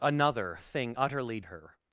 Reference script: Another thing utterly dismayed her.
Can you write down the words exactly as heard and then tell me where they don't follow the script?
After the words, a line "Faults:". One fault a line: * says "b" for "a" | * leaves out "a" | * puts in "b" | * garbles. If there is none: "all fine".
Another thing utterly her.
Faults:
* leaves out "dismayed"